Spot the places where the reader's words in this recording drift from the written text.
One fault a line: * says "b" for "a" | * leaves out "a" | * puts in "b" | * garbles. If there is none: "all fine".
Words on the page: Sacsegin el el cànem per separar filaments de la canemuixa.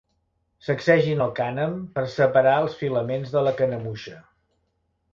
* leaves out "el"
* puts in "els"